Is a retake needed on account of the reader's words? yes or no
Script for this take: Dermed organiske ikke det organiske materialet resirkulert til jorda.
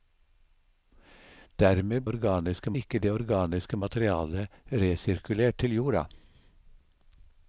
no